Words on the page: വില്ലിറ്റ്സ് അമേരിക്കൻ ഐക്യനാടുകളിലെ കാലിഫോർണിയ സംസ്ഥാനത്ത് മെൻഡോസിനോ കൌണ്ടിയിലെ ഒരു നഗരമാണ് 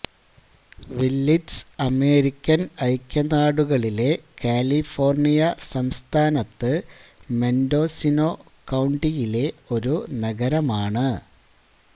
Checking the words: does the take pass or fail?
pass